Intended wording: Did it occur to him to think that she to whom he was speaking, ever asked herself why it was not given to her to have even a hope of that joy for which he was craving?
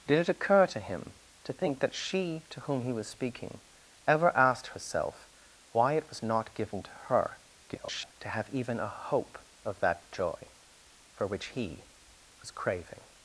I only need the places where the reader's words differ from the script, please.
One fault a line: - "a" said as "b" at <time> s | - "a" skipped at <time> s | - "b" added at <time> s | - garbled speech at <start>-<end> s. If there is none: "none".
- garbled speech at 7.7-8.1 s